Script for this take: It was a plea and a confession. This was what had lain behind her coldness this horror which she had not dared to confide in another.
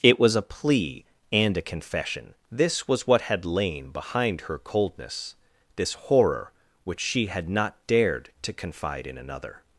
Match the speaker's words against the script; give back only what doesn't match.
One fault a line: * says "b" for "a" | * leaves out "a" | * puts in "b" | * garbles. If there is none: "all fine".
all fine